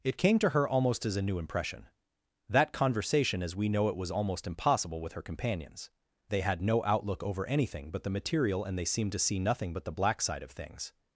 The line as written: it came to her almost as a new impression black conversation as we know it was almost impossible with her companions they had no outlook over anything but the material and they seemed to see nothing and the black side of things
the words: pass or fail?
fail